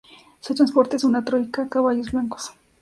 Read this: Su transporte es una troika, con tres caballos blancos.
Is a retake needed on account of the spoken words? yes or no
yes